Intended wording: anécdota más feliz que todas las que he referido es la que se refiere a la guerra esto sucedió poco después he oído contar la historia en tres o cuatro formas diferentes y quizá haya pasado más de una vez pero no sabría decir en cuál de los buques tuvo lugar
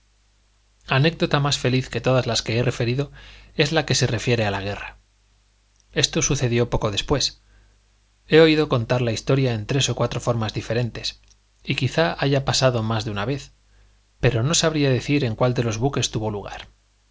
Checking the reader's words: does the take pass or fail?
pass